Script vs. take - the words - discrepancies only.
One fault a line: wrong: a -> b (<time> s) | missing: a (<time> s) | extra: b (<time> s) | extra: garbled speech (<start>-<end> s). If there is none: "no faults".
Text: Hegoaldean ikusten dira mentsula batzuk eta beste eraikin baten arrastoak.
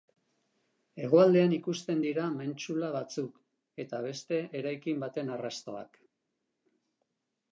no faults